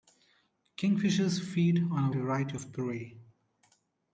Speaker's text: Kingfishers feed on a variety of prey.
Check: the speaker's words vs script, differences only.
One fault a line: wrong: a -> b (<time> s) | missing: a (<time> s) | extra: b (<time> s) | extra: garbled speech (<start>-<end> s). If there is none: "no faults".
no faults